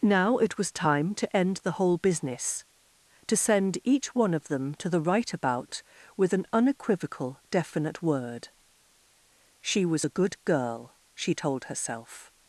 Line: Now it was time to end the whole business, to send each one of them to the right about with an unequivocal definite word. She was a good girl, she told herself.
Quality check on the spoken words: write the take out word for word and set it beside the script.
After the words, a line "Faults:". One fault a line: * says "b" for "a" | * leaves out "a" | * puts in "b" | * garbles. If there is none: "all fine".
Now it was time to end the whole business, to send each one of them to the right about with an unequivocal definite word. She was a good girl, she told herself.
Faults:
all fine